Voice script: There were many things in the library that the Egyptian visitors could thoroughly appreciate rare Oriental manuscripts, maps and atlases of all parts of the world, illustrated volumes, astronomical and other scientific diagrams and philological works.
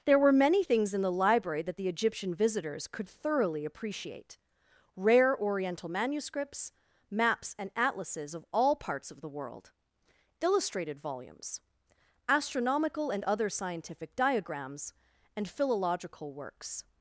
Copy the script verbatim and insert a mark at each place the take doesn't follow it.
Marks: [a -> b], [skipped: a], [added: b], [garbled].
There were many things in the library that the Egyptian visitors could thoroughly appreciate rare Oriental manuscripts, maps and atlases of all parts of the world, illustrated volumes, astronomical and other scientific diagrams and philological works.